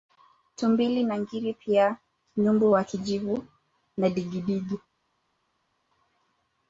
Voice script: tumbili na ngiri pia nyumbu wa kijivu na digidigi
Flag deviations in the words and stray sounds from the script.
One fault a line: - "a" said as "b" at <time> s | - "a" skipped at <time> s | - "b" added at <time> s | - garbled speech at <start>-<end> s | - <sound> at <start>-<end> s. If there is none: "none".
none